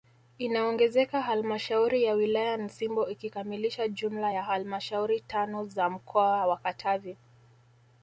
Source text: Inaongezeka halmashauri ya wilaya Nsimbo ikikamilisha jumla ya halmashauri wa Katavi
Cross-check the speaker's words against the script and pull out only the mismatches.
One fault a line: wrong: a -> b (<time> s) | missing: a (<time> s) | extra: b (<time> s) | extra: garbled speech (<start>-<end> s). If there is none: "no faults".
extra: tano za mkoa (5.2 s)